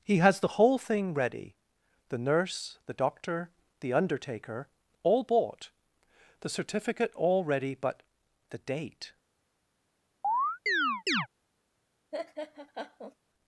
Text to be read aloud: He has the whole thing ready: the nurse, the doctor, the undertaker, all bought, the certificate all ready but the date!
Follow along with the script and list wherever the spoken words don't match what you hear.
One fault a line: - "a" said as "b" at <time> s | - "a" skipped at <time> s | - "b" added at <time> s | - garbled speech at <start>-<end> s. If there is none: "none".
none